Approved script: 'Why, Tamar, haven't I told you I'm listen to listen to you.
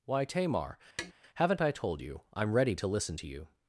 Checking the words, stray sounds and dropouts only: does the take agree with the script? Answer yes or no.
no